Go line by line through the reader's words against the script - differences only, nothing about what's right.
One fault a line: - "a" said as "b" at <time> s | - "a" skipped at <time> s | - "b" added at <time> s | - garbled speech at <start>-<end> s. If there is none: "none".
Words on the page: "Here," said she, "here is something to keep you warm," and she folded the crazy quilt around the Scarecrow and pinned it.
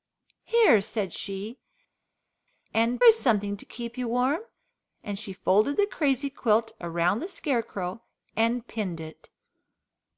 - "here" said as "and" at 2.7 s